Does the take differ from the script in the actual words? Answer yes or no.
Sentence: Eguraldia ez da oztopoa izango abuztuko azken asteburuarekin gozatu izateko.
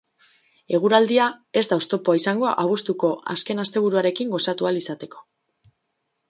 yes